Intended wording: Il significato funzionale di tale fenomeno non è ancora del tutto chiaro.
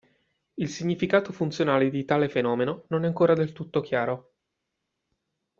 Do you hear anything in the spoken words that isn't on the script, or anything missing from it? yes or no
no